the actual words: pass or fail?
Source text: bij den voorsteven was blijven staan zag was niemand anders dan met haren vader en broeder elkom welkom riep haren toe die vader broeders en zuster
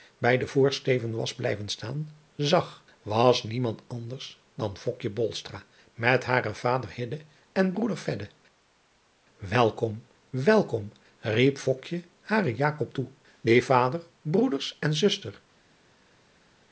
pass